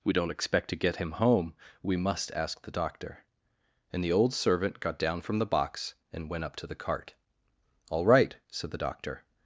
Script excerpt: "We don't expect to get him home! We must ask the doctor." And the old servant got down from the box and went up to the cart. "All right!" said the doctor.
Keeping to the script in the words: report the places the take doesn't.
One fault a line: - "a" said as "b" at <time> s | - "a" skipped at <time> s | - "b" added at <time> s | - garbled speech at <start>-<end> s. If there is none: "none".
none